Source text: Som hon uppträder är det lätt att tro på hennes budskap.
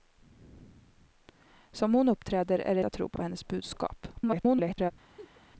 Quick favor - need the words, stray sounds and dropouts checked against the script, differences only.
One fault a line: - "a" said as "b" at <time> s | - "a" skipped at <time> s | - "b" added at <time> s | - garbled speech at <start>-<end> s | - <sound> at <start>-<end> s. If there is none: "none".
- "lätt" skipped at 2.8 s
- "på" added at 3.1 s
- garbled speech at 4.1-4.9 s
- laugh at 5.2-5.4 s